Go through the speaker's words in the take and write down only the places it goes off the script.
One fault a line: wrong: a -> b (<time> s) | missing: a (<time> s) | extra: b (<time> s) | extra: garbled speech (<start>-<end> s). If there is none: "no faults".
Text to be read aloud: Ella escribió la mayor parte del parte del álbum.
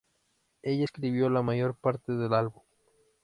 missing: parte del (2.3 s)